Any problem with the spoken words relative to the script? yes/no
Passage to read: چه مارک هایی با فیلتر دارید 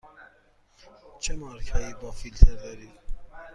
no